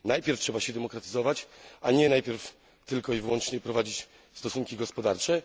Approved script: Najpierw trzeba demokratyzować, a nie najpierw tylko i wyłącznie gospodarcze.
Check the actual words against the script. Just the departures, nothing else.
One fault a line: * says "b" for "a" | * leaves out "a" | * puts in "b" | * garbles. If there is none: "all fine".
* puts in "się"
* puts in "prowadzić stosunki"